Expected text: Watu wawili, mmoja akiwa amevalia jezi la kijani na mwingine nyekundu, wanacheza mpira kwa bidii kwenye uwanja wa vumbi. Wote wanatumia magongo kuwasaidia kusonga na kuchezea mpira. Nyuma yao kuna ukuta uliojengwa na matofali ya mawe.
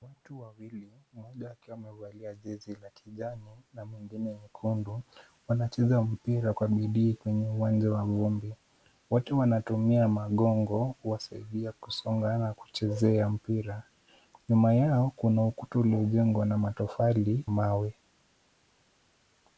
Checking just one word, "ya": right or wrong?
wrong